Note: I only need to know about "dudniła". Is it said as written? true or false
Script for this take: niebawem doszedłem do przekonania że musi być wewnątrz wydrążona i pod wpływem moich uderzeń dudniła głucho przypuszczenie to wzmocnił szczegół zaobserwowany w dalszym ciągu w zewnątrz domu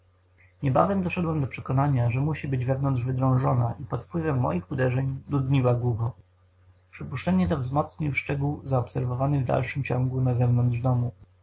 true